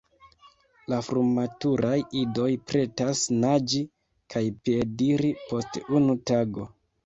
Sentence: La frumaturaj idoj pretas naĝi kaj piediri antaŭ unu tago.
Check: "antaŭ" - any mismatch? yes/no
yes